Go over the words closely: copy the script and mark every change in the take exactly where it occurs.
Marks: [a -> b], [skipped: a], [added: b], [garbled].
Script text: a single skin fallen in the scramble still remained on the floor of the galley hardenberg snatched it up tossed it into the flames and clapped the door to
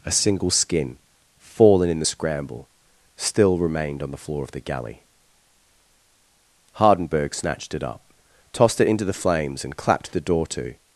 a single skin fallen in the scramble still remained on the floor of the galley hardenberg snatched it up tossed it into the flames and clapped the door to